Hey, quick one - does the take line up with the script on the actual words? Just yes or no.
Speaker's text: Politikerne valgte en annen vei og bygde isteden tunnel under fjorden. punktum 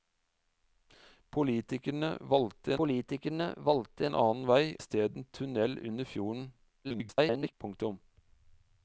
no